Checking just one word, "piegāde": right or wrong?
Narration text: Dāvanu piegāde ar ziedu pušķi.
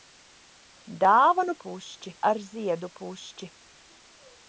wrong